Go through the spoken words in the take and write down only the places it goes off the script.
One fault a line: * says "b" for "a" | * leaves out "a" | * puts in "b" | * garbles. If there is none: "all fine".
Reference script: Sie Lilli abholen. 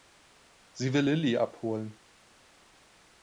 * puts in "will"